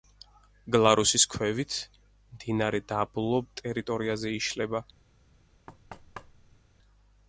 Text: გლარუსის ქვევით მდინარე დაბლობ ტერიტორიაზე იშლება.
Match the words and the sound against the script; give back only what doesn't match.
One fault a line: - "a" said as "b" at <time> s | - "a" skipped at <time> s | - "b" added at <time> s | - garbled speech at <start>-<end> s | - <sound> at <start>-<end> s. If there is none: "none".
- thud at 5.7-6.6 s